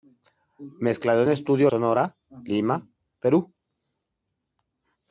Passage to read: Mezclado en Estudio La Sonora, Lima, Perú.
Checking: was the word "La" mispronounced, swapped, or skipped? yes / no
yes